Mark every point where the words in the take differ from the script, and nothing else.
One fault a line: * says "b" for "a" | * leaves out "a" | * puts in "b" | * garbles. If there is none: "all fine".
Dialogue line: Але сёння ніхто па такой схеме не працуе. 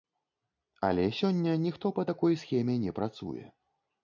all fine